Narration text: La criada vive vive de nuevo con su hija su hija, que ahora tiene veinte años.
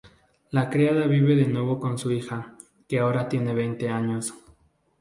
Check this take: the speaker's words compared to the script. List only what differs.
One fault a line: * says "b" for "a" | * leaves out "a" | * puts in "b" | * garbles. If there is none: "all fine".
* leaves out "vive"
* leaves out "su hija"